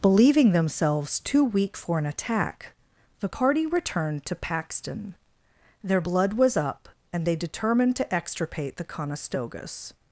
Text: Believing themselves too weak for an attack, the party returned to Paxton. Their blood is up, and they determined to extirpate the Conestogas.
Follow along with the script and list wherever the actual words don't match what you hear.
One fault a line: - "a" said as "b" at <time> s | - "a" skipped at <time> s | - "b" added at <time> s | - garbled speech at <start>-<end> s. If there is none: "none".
- "is" said as "was" at 6.3 s